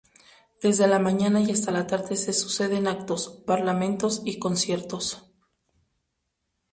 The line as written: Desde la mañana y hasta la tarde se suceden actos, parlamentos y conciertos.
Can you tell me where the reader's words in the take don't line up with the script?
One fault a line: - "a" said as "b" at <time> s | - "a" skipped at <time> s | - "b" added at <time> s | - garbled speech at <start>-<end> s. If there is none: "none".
none